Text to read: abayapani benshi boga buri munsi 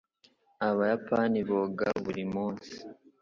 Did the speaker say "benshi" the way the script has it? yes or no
no